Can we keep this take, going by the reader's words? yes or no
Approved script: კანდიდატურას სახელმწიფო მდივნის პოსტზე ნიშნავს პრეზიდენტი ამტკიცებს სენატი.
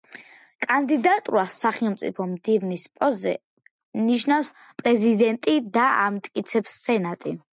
no